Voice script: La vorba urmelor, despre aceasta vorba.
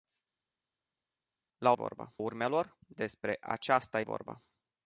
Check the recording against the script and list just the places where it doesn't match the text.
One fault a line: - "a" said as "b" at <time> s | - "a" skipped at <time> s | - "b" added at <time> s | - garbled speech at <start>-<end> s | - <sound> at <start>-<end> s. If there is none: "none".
none